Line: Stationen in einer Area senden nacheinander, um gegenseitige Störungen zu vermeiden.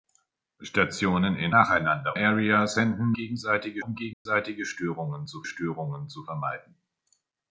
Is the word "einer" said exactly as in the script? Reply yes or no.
no